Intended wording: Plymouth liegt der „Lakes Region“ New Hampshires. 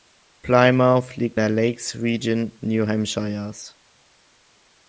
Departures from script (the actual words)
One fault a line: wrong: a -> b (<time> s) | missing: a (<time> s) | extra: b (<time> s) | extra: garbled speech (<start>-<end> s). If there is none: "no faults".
no faults